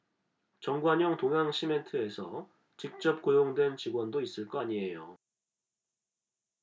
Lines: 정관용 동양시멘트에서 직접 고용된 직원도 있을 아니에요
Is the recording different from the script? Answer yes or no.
yes